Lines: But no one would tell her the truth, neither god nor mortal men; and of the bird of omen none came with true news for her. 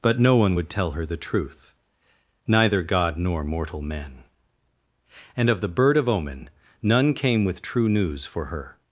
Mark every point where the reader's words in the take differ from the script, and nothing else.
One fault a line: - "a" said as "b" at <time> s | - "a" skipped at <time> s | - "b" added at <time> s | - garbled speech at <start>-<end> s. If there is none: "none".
none